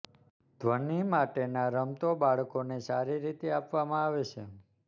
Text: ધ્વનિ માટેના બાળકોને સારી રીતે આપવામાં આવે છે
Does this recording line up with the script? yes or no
no